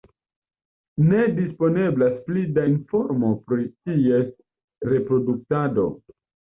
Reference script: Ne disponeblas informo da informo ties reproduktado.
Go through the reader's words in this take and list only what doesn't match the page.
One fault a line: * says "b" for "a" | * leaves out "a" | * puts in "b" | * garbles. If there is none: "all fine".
* says "pli" for "informo"
* puts in "pri"